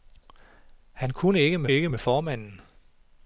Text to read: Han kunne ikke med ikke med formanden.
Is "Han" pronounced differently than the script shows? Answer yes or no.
no